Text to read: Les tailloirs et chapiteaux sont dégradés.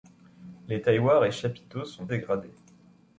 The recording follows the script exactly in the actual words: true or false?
true